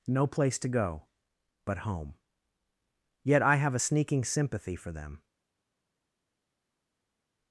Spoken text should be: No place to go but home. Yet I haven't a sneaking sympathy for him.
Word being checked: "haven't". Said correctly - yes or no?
no